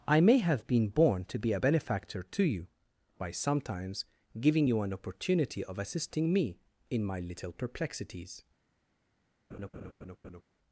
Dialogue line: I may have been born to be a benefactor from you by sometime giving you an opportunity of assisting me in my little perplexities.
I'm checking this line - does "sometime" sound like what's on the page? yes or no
no